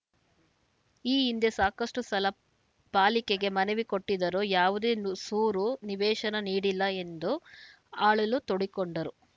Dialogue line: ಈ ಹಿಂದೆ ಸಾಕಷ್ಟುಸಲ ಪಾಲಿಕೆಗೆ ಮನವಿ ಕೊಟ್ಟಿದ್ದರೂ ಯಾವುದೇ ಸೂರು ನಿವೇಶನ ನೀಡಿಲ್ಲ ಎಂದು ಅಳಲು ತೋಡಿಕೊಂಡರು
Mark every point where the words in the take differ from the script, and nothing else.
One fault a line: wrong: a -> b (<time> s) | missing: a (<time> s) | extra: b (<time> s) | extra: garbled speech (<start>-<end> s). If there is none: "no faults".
no faults